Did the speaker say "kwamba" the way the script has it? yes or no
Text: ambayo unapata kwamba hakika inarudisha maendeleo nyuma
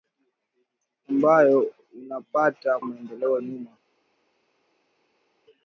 no